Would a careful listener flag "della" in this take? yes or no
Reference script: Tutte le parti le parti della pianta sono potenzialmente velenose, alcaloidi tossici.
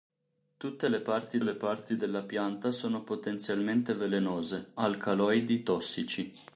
no